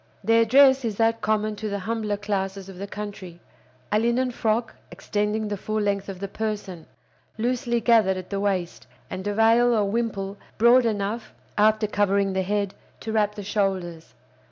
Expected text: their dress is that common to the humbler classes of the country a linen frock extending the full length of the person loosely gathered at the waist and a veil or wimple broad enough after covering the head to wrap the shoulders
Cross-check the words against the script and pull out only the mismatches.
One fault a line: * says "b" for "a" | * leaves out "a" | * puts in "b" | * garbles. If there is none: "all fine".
all fine